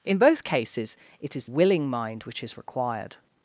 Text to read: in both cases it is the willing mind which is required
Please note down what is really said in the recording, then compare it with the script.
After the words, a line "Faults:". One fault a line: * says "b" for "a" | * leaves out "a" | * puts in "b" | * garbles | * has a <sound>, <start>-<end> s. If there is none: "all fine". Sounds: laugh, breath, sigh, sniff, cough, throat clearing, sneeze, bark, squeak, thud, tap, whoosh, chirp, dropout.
in both cases it is willing mind which is required
Faults:
* leaves out "the"